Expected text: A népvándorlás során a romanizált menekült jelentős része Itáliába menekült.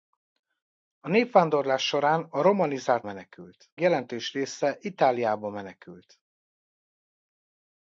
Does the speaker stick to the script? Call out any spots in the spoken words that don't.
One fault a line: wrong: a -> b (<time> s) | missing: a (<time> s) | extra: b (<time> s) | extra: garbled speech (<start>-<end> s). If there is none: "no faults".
no faults